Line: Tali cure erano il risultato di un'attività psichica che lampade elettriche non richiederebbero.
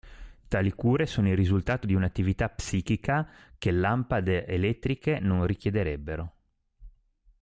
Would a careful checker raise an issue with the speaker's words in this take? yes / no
yes